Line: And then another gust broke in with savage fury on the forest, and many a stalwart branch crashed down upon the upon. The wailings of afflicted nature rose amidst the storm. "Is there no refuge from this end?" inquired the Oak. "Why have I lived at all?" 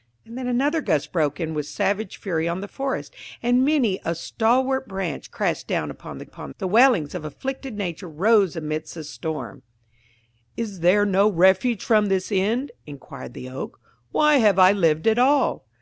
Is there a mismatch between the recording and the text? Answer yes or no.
no